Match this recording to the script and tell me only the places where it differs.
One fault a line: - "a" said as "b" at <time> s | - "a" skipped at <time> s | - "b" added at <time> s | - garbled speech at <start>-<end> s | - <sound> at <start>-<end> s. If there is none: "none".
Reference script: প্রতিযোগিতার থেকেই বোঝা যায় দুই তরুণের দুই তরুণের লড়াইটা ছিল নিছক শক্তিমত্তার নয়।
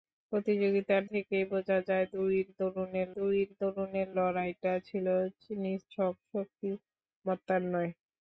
none